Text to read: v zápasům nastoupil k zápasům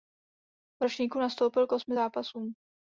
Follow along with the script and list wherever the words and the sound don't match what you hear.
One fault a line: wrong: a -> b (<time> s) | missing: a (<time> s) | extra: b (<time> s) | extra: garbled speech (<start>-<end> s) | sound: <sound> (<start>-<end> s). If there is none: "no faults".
wrong: zápasům -> ročníku (0.8 s)
extra: osmi (1.7 s)